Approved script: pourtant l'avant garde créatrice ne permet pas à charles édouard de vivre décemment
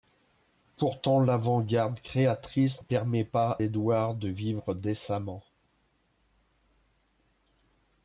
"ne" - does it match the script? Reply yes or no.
no